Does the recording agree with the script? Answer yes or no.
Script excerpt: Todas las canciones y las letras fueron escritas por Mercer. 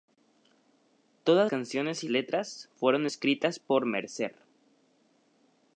no